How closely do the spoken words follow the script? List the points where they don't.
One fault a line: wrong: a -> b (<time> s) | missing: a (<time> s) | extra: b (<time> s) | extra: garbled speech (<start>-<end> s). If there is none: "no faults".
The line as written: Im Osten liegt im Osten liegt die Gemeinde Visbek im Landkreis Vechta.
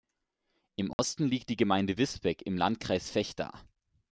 missing: im Osten liegt (1.5 s)